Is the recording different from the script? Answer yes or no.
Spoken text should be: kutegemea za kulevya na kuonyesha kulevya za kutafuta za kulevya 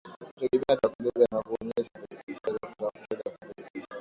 no